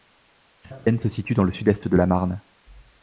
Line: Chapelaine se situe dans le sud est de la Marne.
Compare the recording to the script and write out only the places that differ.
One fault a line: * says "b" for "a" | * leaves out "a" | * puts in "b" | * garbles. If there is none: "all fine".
all fine